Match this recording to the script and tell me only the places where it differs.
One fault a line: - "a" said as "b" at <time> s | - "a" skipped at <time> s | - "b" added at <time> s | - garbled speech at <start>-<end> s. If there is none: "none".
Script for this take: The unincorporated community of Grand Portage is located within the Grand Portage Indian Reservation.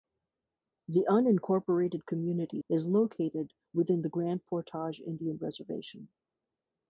- "of Grand Portage" skipped at 2.6 s